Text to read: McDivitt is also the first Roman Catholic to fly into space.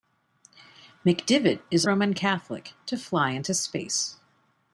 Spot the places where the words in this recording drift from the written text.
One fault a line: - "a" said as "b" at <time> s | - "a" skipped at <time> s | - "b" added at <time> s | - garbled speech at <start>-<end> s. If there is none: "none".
- "also the first" skipped at 1.9 s